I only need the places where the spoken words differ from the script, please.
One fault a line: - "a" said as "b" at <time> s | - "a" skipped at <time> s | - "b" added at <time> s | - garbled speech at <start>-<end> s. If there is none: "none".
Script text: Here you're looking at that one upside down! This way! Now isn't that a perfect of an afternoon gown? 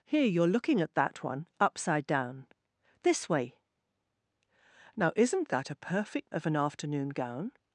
none